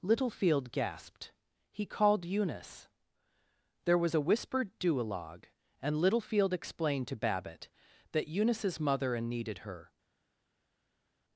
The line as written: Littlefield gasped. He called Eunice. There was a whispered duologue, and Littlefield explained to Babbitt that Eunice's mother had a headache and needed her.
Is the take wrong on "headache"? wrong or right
wrong